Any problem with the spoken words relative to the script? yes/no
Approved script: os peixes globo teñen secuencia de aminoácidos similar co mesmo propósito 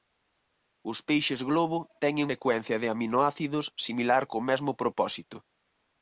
no